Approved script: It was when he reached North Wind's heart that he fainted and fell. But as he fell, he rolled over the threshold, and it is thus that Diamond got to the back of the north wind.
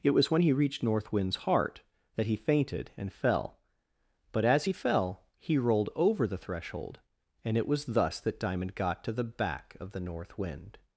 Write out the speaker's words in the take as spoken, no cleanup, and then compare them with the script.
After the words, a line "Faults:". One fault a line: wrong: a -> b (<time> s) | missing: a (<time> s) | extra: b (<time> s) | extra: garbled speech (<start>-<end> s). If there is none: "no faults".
It was when he reached North Wind's heart that he fainted and fell. But as he fell, he rolled over the threshold, and it was thus that Diamond got to the back of the north wind.
Faults:
wrong: is -> was (7.7 s)